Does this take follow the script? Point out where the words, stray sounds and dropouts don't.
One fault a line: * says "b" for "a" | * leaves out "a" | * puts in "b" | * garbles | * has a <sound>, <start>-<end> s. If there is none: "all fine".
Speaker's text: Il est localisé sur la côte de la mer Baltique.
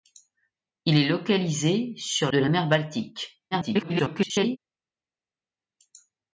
* leaves out "la côte"
* garbles